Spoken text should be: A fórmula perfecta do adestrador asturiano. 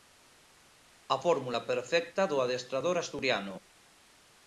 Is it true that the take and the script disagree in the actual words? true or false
false